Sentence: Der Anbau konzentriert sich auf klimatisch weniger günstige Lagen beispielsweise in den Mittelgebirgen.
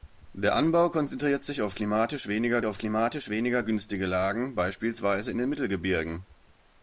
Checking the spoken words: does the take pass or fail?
fail